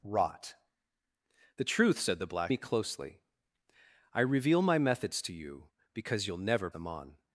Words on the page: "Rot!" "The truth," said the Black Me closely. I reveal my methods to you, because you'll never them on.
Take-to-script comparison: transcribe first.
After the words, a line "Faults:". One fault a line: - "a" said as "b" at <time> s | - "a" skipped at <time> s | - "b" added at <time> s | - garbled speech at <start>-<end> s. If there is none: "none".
"Rot!" "The truth," said the Black Me closely. I reveal my methods to you, because you'll never them on.
Faults:
none